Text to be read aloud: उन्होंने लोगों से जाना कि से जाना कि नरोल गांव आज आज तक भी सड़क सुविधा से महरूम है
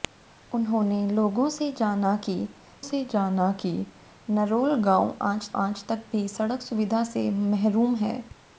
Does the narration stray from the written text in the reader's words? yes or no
no